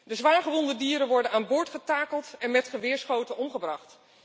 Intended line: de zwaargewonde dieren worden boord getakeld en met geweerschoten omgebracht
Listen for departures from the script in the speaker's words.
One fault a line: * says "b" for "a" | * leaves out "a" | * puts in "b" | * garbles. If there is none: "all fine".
* puts in "aan"